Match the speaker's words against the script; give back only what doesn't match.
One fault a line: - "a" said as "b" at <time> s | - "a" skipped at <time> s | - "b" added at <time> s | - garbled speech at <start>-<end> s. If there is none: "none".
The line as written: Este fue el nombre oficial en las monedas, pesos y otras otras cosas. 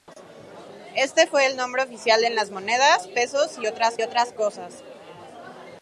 none